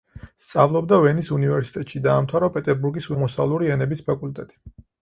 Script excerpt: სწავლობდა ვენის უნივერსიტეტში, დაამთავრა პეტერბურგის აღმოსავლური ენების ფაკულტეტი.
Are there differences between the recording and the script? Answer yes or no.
no